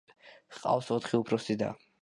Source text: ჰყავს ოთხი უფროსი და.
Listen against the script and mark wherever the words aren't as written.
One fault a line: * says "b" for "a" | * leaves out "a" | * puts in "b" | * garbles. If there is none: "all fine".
all fine